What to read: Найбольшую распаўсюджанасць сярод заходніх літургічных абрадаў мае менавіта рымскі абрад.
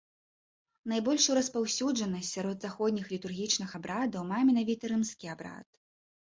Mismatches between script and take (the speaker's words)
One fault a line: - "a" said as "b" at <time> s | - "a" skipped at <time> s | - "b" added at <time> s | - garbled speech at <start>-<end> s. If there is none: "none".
none